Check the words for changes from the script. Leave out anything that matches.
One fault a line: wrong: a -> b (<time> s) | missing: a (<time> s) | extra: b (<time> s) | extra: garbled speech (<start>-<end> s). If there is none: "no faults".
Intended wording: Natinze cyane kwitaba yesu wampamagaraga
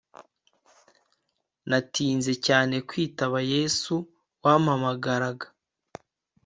no faults